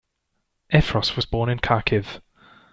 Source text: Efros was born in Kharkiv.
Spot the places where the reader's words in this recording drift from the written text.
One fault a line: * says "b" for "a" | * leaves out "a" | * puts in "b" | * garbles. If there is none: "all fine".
all fine